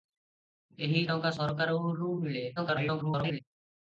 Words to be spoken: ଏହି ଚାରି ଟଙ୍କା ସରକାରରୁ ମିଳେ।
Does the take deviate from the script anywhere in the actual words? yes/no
yes